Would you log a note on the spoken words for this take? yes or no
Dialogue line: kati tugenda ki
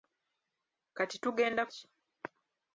no